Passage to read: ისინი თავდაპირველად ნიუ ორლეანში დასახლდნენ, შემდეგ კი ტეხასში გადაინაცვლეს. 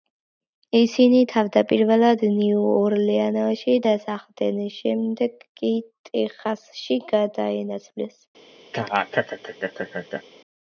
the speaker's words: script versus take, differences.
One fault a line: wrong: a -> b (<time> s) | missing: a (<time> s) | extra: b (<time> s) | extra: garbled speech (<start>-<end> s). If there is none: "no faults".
no faults